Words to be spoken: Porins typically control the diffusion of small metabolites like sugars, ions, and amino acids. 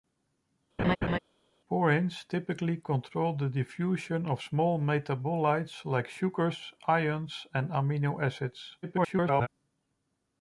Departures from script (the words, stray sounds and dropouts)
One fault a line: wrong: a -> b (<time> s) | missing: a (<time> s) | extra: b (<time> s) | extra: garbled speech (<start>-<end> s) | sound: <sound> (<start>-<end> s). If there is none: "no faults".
sound: laugh (0.8-1.2 s)
extra: garbled speech (8.8-9.5 s)